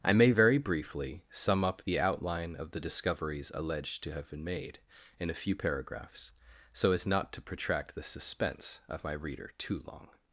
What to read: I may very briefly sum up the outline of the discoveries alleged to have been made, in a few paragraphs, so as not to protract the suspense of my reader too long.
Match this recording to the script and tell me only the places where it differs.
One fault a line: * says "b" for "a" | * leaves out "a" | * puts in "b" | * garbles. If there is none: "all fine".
all fine